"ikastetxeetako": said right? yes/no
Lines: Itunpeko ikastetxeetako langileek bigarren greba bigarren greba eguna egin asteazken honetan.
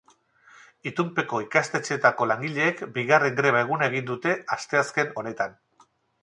yes